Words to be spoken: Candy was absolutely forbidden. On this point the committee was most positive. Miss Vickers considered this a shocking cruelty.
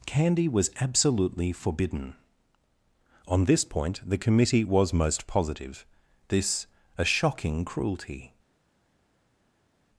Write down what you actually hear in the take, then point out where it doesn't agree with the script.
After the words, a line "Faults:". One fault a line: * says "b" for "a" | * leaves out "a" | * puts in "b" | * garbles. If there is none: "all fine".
Candy was absolutely forbidden. On this point the committee was most positive. this a shocking cruelty.
Faults:
* leaves out "Miss Vickers considered"